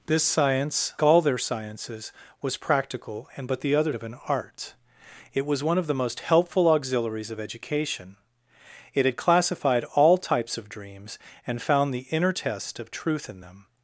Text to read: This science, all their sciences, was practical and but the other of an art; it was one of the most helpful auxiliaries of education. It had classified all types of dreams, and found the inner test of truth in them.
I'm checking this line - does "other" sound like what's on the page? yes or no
yes